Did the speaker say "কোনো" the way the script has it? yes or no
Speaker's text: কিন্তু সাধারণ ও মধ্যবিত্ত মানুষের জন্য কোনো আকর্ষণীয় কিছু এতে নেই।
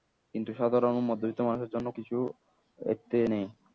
no